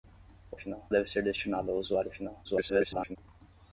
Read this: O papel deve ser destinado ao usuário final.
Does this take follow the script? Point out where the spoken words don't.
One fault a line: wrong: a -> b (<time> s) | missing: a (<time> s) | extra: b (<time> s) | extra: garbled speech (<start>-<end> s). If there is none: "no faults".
wrong: papel -> final (0.6 s)
extra: garbled speech (2.4-3.2 s)